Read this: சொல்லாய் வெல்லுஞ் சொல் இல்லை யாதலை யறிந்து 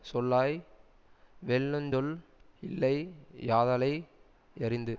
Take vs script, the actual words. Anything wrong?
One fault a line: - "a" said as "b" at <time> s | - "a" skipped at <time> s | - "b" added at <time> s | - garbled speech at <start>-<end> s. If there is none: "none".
none